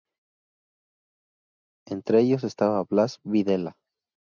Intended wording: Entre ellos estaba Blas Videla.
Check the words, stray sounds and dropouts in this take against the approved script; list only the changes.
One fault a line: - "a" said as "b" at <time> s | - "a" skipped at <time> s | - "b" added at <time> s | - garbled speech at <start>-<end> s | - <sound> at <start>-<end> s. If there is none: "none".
none